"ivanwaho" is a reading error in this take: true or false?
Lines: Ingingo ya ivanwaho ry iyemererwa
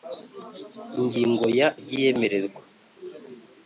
true